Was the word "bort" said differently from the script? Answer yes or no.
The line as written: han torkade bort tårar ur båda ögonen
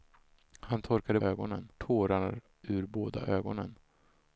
yes